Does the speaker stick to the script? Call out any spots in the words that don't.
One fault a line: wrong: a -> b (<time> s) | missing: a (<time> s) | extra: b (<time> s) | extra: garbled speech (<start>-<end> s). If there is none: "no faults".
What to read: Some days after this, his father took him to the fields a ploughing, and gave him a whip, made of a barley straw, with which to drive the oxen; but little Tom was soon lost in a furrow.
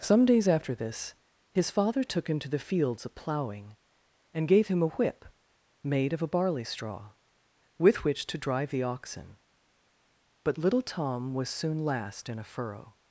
wrong: lost -> last (11.8 s)